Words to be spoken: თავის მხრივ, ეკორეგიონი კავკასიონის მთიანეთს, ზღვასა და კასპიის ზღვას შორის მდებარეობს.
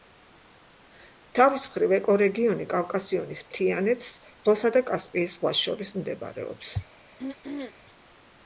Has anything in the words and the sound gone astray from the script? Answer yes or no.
yes